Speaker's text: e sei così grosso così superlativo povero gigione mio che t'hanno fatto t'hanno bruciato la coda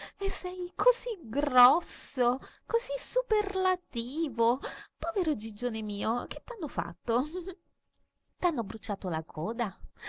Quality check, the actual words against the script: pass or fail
pass